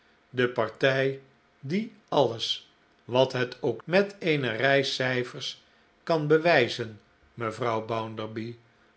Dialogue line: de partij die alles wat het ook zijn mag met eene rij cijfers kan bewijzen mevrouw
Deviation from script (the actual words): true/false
true